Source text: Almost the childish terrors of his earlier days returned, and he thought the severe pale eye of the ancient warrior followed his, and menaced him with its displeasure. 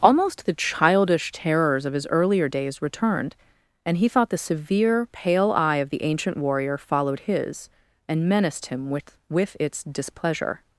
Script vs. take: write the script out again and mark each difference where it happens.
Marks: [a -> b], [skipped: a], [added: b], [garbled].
Almost the childish terrors of his earlier days returned, and he thought the severe pale eye of the ancient warrior followed his, and menaced him with [added: with] its displeasure.